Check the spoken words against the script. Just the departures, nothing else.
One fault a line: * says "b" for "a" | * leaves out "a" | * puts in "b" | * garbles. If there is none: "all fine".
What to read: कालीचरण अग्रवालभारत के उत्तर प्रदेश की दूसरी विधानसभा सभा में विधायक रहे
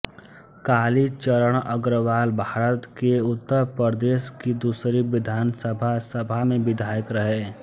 all fine